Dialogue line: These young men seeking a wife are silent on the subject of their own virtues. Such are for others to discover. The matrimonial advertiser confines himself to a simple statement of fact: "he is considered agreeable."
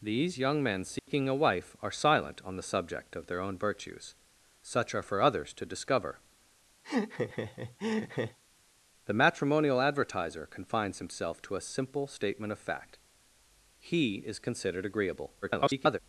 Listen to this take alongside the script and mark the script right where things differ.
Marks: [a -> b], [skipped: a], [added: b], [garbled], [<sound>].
These young men seeking [dropout] a wife are silent on the subject of their own virtues. Such are for others to discover. [laugh] The matrimonial advertiser confines himself to a simple statement of fact: "he is considered agreeable." [garbled]